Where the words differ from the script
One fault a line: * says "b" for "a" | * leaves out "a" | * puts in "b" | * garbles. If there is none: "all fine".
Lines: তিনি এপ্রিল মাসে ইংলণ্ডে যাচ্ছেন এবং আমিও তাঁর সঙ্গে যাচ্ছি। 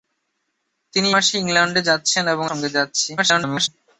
* leaves out "এপ্রিল"
* leaves out "আমিও তাঁর"
* garbles